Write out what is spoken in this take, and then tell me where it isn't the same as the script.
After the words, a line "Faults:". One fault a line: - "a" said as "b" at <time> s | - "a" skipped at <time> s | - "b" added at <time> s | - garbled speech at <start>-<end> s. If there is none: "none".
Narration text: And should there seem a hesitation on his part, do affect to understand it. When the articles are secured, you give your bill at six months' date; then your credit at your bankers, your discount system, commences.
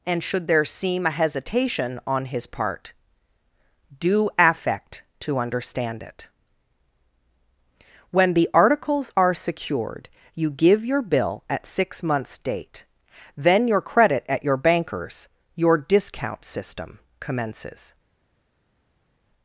And should there seem a hesitation on his part, do affect to understand it. When the articles are secured, you give your bill at six months' date; then your credit at your bankers, your discount system, commences.
Faults:
none